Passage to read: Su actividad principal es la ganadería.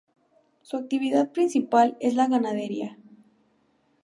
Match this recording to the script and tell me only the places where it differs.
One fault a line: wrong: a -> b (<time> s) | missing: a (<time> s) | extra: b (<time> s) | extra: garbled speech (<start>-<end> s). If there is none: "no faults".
no faults